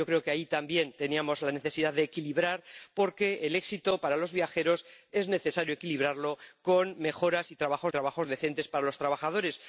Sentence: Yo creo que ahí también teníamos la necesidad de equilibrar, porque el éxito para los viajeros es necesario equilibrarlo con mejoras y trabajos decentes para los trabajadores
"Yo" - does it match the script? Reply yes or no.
yes